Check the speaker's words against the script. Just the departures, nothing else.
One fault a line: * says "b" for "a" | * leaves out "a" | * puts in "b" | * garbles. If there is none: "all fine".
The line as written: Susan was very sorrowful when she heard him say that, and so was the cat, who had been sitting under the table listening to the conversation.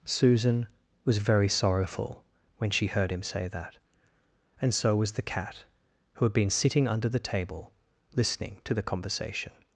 all fine